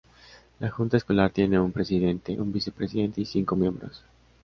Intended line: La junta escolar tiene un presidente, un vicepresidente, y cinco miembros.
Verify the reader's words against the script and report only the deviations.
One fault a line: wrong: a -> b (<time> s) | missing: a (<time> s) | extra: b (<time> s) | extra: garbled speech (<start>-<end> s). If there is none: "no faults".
no faults